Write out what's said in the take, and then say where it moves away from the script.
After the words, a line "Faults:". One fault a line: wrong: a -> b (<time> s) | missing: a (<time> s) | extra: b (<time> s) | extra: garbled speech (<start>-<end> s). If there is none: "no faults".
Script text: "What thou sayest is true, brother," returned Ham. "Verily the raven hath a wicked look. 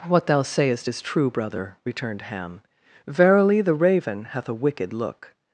"What thou sayest is true, brother," returned Ham. "Verily the raven hath a wicked look.
Faults:
no faults